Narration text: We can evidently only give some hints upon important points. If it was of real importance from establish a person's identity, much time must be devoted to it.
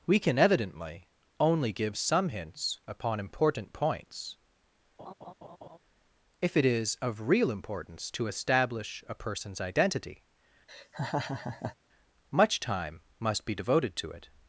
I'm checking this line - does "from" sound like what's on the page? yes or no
no